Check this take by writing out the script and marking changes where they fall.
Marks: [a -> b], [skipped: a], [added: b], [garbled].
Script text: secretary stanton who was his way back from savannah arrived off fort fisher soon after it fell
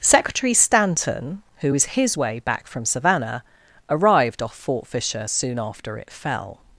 secretary stanton who was his way back from savannah arrived off fort fisher soon after it fell